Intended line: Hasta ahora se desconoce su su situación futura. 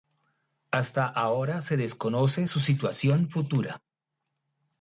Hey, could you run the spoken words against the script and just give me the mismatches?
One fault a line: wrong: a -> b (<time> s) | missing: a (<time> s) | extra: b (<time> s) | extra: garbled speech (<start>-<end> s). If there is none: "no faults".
missing: su (2.6 s)